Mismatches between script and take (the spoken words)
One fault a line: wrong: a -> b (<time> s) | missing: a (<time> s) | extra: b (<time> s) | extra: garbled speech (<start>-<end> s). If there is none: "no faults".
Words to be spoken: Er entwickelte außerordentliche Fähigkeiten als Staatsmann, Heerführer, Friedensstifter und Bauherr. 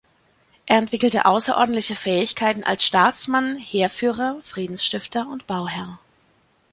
no faults